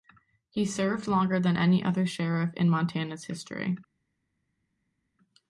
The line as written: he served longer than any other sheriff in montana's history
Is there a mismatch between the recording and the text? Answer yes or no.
no